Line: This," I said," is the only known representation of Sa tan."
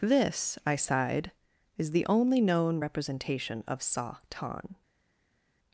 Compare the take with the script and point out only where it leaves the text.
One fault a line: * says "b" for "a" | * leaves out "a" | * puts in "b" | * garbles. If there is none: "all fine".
* says "sighed" for "said"